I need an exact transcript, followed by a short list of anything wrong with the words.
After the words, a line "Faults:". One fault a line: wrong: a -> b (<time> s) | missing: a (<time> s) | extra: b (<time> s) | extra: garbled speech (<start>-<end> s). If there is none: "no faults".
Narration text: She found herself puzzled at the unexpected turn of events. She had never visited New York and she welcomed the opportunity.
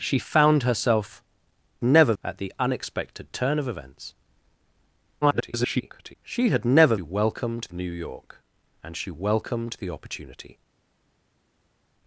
She found herself never at the unexpected turn of events. [garbled] She had never welcomed New York and she welcomed the opportunity.
Faults:
wrong: puzzled -> never (1.8 s)
extra: garbled speech (5.2-6.2 s)
wrong: visited -> welcomed (7.0 s)